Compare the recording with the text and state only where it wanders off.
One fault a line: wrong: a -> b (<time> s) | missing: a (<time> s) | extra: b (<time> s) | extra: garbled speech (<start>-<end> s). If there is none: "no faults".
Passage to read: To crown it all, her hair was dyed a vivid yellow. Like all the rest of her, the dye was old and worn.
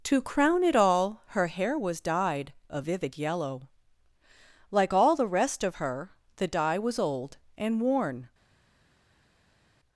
no faults